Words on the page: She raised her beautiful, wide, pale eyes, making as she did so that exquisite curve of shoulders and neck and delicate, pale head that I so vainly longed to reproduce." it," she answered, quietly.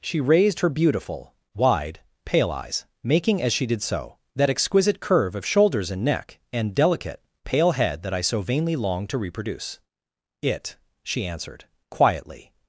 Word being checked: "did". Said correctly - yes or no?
yes